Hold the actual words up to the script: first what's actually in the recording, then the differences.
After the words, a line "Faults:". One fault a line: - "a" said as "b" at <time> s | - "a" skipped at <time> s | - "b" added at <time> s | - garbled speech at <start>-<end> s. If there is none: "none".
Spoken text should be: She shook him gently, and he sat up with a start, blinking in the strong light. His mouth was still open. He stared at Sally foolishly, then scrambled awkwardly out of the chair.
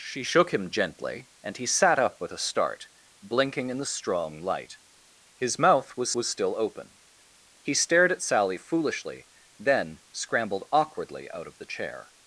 She shook him gently, and he sat up with a start, blinking in the strong light. His mouth was was still open. He stared at Sally foolishly, then scrambled awkwardly out of the chair.
Faults:
- "was" added at 6.1 s